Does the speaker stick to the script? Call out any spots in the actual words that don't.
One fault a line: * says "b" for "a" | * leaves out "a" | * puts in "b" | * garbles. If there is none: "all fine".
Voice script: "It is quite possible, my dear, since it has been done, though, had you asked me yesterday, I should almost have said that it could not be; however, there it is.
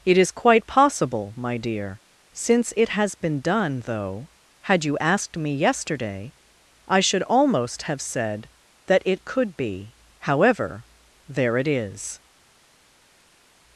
* leaves out "not"